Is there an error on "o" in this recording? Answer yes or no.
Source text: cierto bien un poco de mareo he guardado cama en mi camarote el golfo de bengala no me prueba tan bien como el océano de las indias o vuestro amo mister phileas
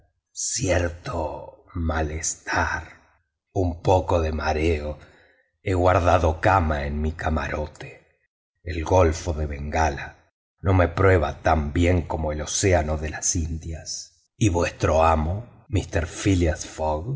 yes